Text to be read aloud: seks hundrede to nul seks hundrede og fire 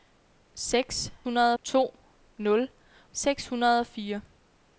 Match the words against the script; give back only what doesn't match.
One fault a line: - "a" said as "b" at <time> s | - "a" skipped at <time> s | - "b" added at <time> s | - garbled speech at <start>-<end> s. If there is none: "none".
none